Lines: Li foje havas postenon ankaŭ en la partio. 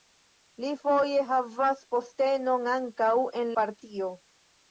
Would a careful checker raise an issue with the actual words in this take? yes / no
yes